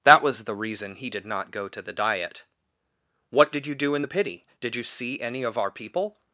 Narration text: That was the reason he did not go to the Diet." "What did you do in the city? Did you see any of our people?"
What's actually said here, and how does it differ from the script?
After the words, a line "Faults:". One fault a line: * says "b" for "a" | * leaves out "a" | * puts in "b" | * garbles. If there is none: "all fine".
That was the reason he did not go to the Diet." "What did you do in the pity? Did you see any of our people?"
Faults:
* says "pity" for "city"